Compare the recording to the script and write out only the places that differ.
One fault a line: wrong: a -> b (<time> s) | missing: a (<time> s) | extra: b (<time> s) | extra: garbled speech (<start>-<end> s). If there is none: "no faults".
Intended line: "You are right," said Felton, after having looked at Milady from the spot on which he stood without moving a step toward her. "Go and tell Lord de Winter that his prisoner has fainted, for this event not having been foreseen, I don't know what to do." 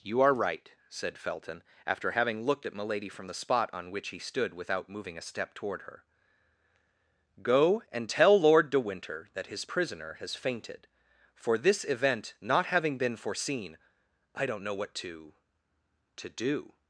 extra: to (16.2 s)